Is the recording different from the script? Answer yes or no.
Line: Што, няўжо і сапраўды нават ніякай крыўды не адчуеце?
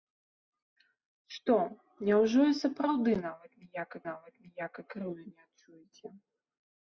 yes